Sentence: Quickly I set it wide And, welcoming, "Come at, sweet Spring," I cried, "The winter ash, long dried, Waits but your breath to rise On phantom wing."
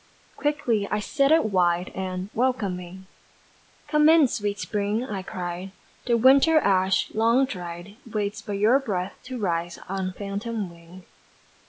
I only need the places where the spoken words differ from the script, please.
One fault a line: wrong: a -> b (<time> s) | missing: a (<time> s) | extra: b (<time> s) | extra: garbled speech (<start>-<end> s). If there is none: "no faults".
wrong: at -> in (4.1 s)